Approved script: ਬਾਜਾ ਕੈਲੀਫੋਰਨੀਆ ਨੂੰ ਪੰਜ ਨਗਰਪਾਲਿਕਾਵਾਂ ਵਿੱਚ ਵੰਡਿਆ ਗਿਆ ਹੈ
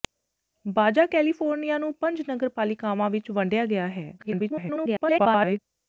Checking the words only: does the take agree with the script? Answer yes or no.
no